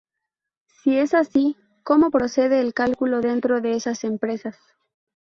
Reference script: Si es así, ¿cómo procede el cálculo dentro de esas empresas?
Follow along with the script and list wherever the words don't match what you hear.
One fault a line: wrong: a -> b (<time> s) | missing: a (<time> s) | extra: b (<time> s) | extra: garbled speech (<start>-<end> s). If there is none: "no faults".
no faults